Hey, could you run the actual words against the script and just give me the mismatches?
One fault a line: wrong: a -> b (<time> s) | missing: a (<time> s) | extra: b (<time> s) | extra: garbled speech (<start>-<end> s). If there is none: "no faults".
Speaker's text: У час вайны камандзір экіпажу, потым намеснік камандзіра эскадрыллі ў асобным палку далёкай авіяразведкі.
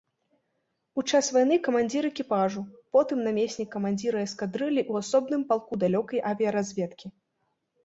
no faults